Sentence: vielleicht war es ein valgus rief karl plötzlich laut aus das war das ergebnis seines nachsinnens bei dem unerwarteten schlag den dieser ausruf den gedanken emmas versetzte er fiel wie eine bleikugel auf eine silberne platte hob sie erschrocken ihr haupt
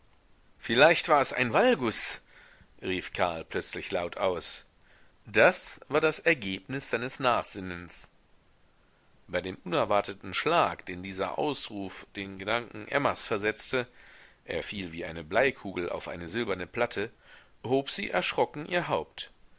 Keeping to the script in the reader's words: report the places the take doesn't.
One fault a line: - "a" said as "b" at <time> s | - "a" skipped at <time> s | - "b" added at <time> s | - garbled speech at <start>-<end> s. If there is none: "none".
none